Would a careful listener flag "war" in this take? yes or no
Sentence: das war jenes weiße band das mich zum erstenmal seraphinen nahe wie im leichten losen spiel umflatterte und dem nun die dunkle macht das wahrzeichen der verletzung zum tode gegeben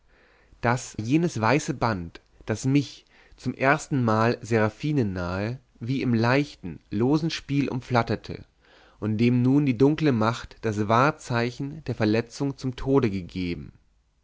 yes